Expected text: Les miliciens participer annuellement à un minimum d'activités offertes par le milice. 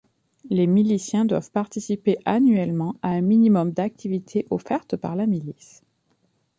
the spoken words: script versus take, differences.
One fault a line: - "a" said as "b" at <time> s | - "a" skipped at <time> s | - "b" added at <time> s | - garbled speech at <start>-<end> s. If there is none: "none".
- "doivent" added at 1.2 s
- "le" said as "la" at 5.1 s